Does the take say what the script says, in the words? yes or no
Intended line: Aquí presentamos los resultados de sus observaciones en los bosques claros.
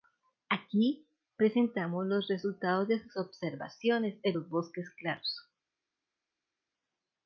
yes